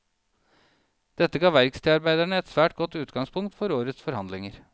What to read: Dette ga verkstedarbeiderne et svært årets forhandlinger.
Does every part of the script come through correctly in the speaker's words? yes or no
no